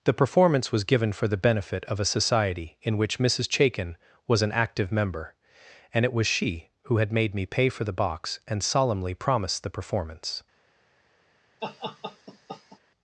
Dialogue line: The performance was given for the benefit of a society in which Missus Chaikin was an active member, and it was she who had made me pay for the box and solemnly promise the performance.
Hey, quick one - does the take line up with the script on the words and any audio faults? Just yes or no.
no